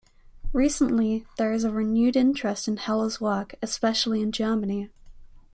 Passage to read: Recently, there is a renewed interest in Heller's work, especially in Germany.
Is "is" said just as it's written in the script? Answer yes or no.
yes